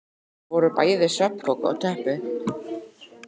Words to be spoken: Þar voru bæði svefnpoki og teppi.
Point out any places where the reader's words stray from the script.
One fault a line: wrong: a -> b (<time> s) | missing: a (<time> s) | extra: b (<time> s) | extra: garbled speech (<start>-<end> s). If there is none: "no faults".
no faults